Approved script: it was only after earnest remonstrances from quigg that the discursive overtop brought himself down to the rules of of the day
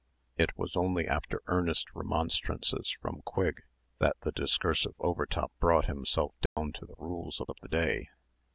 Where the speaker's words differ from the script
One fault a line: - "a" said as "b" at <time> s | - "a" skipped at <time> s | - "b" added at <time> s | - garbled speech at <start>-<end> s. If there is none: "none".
none